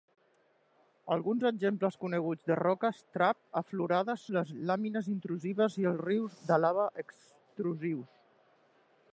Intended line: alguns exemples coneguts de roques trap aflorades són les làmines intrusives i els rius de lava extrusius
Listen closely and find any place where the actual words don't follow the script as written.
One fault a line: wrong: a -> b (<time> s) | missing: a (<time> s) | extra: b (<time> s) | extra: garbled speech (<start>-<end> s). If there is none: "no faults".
missing: són (4.2 s)